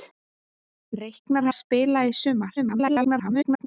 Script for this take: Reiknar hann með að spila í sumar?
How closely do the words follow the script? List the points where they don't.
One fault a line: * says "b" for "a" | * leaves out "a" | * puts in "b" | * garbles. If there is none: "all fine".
* leaves out "hann með"
* garbles